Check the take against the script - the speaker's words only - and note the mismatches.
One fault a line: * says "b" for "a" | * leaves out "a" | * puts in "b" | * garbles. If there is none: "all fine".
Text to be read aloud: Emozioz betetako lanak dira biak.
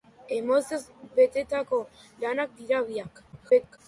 * garbles